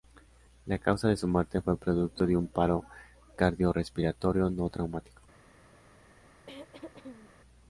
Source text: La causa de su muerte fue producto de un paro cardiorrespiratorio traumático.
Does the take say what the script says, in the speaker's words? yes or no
no